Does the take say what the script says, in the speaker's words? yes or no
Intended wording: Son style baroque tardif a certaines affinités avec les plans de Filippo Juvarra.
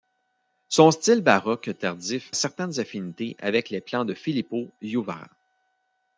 no